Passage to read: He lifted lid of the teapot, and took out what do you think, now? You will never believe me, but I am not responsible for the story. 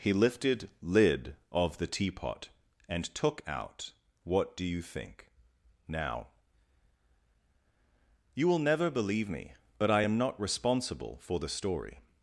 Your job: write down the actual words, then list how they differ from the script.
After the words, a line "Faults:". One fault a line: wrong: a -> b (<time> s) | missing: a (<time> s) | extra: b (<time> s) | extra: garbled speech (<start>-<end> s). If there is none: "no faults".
He lifted lid of the teapot, and took out what do you think, now? You will never believe me, but I am not responsible for the story.
Faults:
no faults